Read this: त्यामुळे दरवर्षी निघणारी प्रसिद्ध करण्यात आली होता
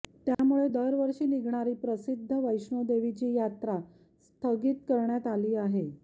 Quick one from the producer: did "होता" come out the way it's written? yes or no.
no